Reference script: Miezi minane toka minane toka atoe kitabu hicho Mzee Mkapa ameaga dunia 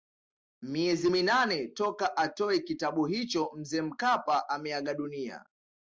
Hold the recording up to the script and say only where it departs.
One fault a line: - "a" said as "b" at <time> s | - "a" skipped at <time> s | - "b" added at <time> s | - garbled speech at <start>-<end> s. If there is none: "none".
- "minane toka" skipped at 2.2 s